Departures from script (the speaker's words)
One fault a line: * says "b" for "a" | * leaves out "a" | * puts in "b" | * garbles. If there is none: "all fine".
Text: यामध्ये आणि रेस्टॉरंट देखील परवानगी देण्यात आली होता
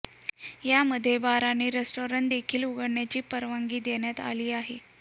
* puts in "बार"
* puts in "उघडण्याची"
* says "आहे" for "होता"